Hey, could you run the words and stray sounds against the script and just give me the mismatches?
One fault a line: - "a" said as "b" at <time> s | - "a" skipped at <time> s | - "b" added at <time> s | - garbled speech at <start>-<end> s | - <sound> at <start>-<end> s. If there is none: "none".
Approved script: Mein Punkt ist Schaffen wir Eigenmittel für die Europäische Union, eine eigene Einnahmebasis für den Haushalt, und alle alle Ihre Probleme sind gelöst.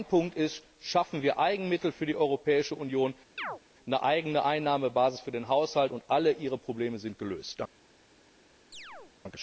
- chirp at 3.4-3.6 s
- "alle" skipped at 6.3 s
- chirp at 8.7-9.1 s